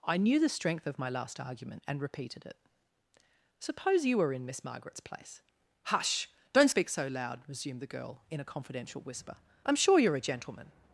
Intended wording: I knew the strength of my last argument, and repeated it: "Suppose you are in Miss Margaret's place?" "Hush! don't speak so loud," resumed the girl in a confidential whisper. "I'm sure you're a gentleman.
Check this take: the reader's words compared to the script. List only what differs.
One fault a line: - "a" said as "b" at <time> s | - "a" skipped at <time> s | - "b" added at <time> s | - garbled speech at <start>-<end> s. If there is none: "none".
- "are" said as "were" at 4.2 s